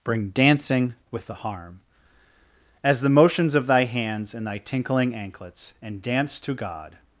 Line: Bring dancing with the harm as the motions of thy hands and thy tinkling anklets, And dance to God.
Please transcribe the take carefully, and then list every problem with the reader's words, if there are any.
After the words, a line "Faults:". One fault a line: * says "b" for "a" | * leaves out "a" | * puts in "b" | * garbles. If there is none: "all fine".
Bring dancing with the harm as the motions of thy hands and thy tinkling anklets, And dance to God.
Faults:
all fine